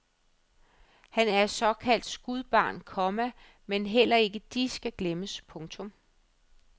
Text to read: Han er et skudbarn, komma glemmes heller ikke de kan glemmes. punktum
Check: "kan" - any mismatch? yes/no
yes